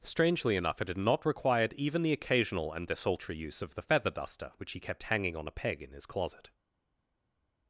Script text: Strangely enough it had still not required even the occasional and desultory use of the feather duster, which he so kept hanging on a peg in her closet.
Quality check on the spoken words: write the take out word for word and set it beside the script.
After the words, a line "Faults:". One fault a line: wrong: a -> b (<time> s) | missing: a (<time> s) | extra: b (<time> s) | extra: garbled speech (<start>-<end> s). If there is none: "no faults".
Strangely enough it had not required even the occasional and desultory use of the feather duster, which he kept hanging on a peg in his closet.
Faults:
missing: still (1.0 s)
missing: so (4.8 s)
wrong: her -> his (5.9 s)